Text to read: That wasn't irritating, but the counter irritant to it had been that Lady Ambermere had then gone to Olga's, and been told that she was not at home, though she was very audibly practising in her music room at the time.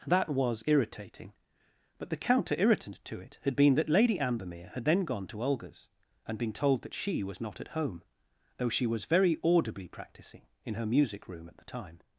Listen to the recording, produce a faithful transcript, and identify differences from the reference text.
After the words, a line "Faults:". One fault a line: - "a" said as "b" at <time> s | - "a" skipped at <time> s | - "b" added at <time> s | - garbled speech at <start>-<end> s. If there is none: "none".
That was irritating, but the counter irritant to it had been that Lady Ambermere had then gone to Olga's, and been told that she was not at home, though she was very audibly practising in her music room at the time.
Faults:
- "wasn't" said as "was" at 0.3 s